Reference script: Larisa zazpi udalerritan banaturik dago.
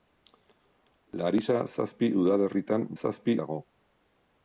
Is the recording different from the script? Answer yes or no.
yes